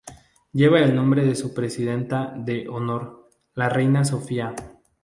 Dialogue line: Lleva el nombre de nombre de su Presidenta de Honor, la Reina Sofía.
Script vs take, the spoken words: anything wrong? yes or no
yes